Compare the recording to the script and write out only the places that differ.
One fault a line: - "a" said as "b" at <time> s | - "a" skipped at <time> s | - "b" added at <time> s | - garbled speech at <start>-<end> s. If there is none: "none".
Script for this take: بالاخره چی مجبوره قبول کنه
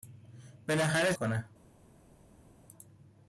- "چی مجبوره قبول" skipped at 1.1 s